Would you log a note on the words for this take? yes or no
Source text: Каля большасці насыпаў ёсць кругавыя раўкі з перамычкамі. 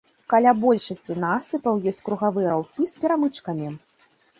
no